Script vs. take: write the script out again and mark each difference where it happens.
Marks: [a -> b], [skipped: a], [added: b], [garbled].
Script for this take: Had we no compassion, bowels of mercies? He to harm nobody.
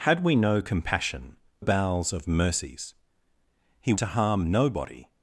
Had we no compassion, bowels of mercies? He to harm nobody.